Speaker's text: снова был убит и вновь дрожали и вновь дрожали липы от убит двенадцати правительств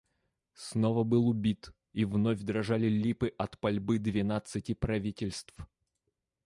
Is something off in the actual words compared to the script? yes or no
yes